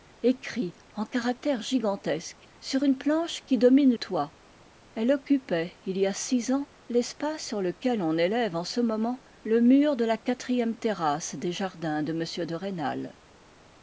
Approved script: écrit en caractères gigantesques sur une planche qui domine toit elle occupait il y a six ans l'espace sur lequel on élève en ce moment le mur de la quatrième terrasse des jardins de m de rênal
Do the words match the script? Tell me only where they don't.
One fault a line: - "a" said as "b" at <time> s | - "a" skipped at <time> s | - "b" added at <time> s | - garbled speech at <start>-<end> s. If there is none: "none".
none